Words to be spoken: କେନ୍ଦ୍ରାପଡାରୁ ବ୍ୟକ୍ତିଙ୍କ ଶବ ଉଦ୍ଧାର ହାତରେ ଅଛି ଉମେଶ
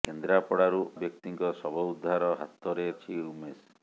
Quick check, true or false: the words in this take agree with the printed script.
true